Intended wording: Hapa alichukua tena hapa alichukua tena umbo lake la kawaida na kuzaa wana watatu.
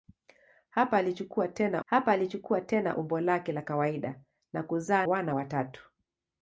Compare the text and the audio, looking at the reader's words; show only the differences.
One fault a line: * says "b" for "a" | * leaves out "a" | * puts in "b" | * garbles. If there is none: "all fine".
all fine